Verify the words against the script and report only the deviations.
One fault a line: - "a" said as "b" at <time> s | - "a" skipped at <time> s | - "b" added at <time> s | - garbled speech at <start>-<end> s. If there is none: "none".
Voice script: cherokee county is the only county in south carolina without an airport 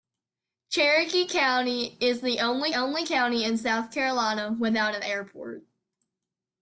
- "only" added at 2.7 s